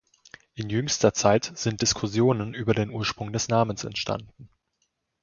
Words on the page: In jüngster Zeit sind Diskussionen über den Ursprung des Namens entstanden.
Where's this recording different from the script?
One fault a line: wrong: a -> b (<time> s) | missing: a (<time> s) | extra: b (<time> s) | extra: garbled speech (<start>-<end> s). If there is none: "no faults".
no faults